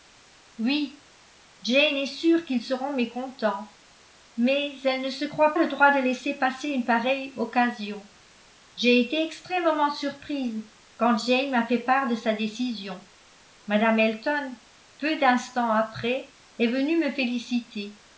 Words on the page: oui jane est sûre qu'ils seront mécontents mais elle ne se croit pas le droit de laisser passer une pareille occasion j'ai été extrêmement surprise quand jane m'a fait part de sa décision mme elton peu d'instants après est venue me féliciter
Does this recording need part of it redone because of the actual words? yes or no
yes